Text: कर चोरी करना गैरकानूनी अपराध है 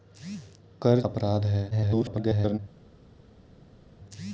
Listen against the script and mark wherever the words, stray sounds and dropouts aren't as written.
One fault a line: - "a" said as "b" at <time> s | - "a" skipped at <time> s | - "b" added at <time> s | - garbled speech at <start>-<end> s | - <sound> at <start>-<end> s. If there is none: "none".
- "चोरी करना गैरकानूनी" skipped at 1.0 s
- garbled speech at 1.7-2.6 s